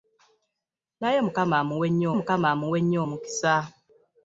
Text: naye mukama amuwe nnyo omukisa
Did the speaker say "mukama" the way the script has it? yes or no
yes